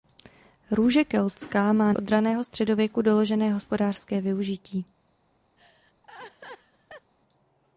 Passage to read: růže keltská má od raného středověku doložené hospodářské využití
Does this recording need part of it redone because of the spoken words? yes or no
no